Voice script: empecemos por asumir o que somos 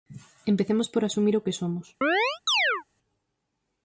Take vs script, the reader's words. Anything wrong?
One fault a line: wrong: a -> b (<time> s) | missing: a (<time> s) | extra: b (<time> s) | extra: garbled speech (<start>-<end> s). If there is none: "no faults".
no faults